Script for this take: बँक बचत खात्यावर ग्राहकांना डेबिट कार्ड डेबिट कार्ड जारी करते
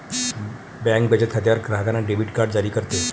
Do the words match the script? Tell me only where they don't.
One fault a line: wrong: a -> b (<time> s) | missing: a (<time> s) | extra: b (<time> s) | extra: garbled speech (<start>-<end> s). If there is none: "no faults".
missing: डेबिट कार्ड (2.5 s)